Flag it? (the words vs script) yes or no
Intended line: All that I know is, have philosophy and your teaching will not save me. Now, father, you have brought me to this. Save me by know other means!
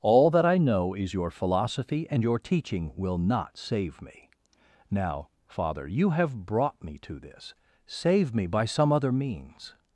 yes